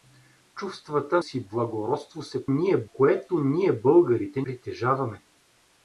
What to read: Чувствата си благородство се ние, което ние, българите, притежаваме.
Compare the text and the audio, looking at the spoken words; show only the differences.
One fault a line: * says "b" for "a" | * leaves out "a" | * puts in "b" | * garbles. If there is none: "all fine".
all fine